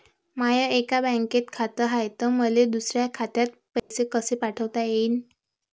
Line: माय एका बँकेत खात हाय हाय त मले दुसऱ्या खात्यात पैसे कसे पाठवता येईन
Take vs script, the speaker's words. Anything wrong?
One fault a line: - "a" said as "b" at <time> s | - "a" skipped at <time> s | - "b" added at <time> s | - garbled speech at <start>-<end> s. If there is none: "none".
- "हाय" skipped at 2.1 s